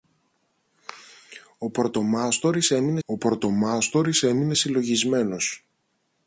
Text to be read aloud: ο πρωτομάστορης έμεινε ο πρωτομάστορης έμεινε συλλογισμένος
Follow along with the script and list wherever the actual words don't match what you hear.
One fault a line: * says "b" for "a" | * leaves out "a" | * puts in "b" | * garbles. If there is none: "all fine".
all fine